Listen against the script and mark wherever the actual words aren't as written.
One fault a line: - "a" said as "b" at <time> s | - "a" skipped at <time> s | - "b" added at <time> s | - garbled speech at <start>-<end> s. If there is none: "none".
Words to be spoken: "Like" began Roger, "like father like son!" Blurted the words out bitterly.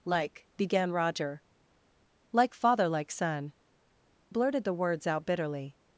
none